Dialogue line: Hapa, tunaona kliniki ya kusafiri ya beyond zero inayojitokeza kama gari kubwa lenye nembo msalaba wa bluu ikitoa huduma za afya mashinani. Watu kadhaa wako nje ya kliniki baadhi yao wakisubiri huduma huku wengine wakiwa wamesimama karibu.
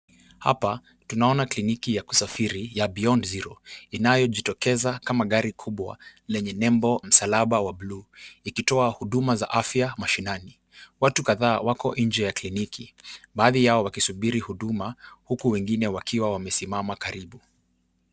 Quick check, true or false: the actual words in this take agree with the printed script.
true